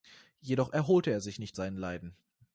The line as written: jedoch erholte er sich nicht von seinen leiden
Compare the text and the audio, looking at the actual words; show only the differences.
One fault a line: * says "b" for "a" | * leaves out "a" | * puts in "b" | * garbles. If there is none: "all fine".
* leaves out "von"